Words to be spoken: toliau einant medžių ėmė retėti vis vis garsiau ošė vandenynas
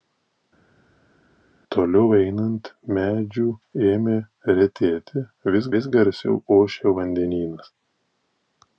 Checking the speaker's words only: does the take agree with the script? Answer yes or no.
yes